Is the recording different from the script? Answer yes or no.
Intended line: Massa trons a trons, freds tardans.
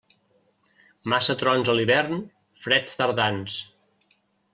yes